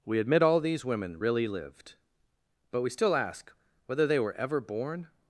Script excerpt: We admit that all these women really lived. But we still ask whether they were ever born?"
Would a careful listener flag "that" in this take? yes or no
yes